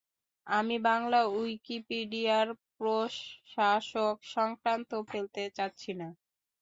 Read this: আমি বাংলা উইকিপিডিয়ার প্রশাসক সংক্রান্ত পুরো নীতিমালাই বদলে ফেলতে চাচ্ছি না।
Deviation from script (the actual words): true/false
true